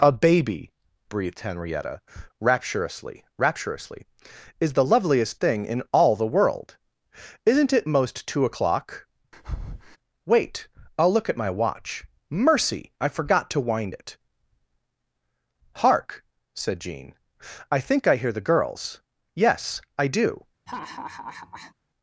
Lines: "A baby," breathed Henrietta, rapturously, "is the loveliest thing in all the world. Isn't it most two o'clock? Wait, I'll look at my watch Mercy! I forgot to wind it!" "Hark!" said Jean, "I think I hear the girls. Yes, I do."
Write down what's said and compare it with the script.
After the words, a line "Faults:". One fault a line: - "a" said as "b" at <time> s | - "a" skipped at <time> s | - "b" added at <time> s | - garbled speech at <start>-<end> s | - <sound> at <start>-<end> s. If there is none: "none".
"A baby," breathed Henrietta, rapturously rapturously, "is the loveliest thing in all the world. Isn't it most two o'clock? Wait, I'll look at my watch Mercy! I forgot to wind it!" "Hark!" said Jean, "I think I hear the girls. Yes, I do."
Faults:
- "rapturously" added at 3.4 s
- breath at 9.3-10.0 s
- laugh at 20.7-21.7 s